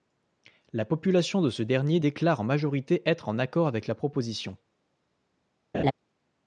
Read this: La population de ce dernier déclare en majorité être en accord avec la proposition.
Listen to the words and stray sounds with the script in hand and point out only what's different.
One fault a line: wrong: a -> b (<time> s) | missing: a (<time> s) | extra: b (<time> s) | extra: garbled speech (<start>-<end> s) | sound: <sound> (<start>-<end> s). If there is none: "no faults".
sound: laugh (5.7-5.9 s)